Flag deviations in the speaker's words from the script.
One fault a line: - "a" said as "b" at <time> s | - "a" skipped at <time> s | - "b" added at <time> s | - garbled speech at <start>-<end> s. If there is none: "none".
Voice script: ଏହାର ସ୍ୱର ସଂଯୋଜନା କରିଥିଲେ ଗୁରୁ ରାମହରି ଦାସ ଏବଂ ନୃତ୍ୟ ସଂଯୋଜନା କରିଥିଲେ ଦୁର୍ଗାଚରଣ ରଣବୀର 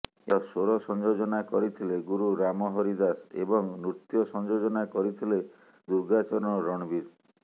none